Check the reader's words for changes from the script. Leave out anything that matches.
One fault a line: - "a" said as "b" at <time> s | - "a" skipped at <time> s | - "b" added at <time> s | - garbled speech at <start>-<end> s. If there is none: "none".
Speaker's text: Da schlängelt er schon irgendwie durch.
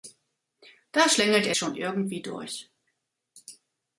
none